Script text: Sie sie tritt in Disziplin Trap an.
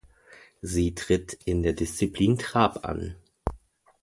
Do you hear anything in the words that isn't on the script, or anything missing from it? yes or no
yes